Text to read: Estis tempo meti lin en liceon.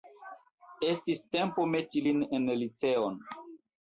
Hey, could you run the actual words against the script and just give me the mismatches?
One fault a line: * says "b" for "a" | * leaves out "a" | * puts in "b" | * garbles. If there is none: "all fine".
all fine